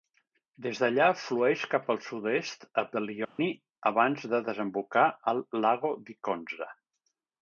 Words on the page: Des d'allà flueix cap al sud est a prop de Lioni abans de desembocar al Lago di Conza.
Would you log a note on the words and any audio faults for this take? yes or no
yes